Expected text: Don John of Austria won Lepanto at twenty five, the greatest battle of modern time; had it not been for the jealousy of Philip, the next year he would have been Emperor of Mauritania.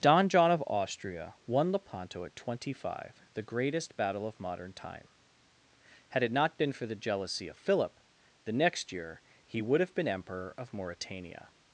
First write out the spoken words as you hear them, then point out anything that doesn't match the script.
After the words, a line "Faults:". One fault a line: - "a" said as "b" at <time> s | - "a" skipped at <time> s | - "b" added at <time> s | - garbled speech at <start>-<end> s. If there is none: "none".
Don John of Austria won Lepanto at twenty five, the greatest battle of modern time; had it not been for the jealousy of Philip, the next year he would have been Emperor of Mauritania.
Faults:
none